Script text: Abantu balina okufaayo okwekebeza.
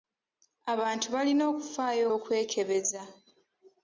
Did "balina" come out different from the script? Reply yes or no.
no